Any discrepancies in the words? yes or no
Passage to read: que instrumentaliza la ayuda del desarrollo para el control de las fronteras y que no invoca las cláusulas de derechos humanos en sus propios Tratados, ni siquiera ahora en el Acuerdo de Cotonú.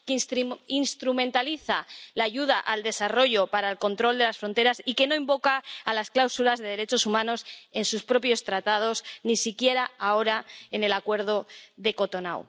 yes